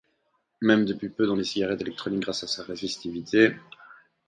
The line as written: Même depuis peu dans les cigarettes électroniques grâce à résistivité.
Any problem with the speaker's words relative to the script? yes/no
yes